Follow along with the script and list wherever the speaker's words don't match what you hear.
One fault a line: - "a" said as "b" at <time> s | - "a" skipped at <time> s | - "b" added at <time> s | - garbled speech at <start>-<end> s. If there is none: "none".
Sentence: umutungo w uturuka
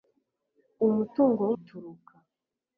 none